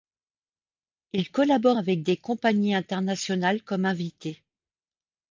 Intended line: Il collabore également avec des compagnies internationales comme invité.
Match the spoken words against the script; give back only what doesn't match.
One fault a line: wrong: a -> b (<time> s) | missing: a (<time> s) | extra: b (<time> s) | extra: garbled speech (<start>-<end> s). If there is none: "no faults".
missing: également (1.8 s)